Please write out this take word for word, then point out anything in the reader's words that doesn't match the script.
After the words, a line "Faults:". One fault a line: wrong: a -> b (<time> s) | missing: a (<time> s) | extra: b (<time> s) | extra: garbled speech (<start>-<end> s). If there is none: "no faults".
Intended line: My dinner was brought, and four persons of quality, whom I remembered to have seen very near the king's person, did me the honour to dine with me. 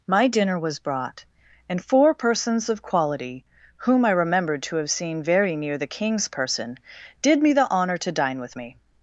My dinner was brought, and four persons of quality, whom I remembered to have seen very near the king's person, did me the honour to dine with me.
Faults:
no faults